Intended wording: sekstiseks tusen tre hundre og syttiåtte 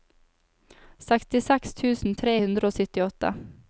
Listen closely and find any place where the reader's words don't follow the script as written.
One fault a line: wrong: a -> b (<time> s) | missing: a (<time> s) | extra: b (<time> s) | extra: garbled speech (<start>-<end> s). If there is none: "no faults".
no faults